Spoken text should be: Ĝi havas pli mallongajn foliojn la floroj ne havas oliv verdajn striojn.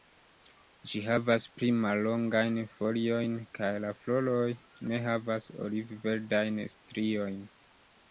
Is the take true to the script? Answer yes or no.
no